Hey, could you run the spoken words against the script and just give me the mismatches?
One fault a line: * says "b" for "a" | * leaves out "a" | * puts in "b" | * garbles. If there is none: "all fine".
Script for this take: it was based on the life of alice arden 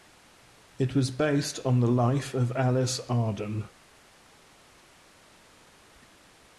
all fine